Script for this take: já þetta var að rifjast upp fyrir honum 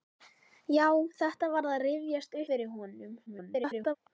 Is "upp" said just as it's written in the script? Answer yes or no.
no